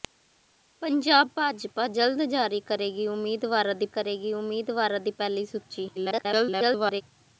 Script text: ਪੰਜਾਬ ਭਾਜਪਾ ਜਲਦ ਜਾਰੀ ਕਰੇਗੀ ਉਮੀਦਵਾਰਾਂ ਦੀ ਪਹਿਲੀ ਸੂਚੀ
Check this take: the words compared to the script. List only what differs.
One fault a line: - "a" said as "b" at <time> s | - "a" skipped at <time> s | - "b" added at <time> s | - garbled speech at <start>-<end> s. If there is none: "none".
- "ਕਰੇਗੀ ਉਮੀਦਵਾਰਾਂ ਦੀ" added at 3.9 s
- garbled speech at 6.0-7.0 s